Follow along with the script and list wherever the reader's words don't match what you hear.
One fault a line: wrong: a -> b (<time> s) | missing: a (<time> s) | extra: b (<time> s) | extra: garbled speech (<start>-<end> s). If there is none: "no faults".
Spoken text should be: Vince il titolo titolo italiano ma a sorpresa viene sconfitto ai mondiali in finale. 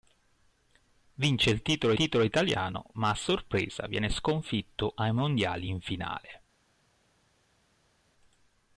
no faults